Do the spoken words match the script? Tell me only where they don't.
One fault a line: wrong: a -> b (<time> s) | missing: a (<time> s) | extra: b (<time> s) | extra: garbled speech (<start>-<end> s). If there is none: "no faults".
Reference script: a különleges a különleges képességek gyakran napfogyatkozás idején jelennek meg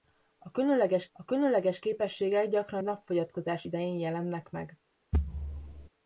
no faults